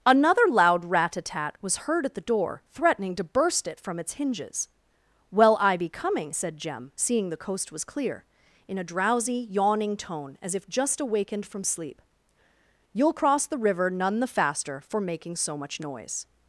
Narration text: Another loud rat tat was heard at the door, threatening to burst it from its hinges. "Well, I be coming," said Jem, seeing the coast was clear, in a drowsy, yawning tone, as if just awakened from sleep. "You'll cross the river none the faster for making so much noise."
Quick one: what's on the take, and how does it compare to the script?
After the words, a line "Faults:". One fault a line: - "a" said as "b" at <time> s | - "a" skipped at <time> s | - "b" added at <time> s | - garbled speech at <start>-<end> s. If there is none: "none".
Another loud rat a tat was heard at the door, threatening to burst it from its hinges. "Well, I be coming," said Jem, seeing the coast was clear, in a drowsy, yawning tone, as if just awakened from sleep. "You'll cross the river none the faster for making so much noise."
Faults:
- "a" added at 1.1 s